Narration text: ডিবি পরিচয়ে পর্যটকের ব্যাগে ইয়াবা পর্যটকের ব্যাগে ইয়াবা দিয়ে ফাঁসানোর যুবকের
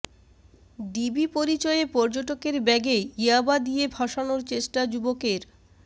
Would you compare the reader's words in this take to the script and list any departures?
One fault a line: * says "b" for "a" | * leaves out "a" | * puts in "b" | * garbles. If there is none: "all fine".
* leaves out "পর্যটকের ব্যাগে ইয়াবা"
* puts in "চেষ্টা"